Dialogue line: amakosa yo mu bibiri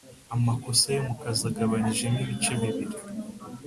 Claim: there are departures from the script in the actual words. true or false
true